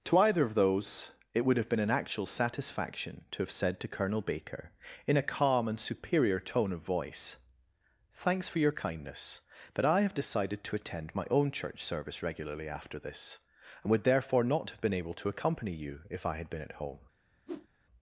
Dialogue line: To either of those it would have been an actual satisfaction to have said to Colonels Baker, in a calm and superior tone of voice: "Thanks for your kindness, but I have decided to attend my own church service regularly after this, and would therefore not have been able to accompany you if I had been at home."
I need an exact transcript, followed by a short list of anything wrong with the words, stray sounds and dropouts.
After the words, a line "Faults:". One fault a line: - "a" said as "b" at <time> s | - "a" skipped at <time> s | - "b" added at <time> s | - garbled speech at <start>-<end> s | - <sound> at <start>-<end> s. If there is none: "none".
To either of those it would have been an actual satisfaction to have said to Colonel Baker, in a calm and superior tone of voice: "Thanks for your kindness, but I have decided to attend my own church service regularly after this, and would therefore not have been able to accompany you if I had been at home."
Faults:
- "Colonels" said as "Colonel" at 3.9 s
- whoosh at 17.5-17.7 s